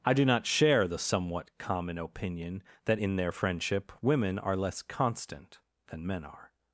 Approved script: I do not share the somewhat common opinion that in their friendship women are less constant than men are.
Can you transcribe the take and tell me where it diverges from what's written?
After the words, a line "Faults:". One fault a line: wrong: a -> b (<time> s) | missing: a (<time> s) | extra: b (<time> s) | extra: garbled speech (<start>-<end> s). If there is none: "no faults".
I do not share the somewhat common opinion that in their friendship women are less constant than men are.
Faults:
no faults